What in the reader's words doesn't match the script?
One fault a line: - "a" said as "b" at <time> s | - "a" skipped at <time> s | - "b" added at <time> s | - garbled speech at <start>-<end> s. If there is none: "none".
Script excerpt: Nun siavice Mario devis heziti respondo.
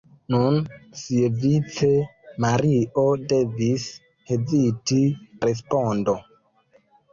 none